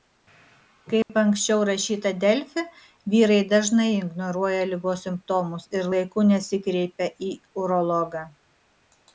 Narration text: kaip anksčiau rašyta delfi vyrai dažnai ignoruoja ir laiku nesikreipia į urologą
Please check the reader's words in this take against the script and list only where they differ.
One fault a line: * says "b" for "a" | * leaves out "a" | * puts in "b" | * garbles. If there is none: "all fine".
* puts in "ligos simptomus"